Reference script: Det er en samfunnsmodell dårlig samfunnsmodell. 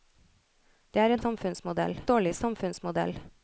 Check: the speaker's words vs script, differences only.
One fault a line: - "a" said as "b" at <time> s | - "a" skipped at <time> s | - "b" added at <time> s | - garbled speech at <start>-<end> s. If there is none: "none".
none